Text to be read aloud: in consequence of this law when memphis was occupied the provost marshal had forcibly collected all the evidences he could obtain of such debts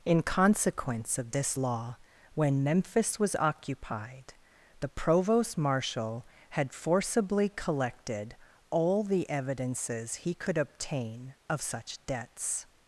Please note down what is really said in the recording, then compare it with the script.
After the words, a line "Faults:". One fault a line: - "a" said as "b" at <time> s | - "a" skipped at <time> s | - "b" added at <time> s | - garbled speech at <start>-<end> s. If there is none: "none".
in consequence of this law when memphis was occupied the provost marshal had forcibly collected all the evidences he could obtain of such debts
Faults:
none